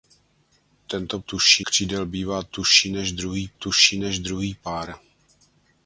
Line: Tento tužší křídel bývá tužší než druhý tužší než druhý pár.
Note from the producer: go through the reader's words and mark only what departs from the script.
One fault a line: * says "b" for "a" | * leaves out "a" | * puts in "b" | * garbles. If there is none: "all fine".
all fine